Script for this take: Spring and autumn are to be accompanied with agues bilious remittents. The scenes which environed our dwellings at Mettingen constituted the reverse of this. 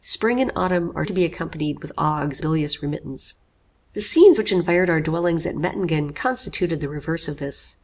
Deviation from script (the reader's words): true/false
false